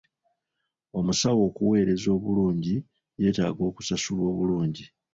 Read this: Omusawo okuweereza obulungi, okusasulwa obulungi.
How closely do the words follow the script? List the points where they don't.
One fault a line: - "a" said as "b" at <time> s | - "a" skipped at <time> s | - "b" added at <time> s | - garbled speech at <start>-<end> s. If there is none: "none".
- "yeetaaga" added at 3.2 s